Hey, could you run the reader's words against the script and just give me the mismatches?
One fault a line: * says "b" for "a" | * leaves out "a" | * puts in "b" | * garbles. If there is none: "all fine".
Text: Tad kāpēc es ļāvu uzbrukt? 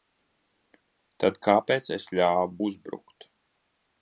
all fine